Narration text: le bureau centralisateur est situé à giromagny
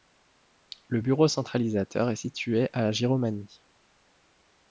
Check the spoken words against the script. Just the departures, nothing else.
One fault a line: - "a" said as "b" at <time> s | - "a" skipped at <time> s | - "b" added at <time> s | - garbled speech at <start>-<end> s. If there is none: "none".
none